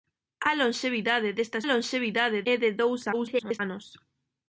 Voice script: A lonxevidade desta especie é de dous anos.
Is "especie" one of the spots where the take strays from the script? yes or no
yes